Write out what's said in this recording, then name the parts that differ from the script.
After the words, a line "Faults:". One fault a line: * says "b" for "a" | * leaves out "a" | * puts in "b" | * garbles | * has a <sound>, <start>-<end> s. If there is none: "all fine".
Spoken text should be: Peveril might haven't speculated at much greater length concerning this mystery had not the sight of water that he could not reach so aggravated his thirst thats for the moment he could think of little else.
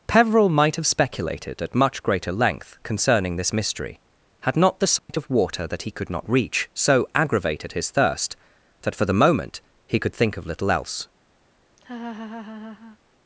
Peveril might have speculated at much greater length concerning this mystery had not the sight of water that he could not reach so aggravated his thirst that for the moment he could think of little else.
Faults:
* says "have" for "haven't"
* has a dropout, 5.0-5.1 s
* says "that" for "thats"
* has a laugh, 11.8-13.0 s